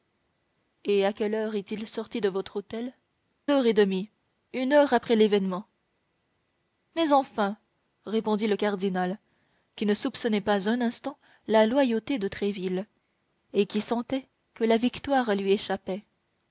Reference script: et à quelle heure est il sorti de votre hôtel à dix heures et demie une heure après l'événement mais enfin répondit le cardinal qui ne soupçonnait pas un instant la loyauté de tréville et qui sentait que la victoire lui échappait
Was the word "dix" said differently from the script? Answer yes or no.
yes